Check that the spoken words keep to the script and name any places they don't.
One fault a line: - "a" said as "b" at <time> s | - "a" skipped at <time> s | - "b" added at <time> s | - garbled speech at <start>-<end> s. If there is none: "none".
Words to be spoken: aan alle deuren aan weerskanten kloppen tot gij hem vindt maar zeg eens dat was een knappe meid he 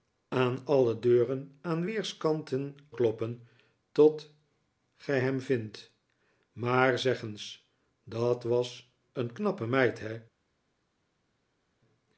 none